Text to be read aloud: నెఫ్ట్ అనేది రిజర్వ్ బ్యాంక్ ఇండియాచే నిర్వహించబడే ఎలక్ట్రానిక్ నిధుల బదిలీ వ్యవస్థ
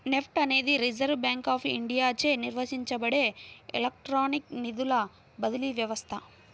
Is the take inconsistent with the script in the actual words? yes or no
yes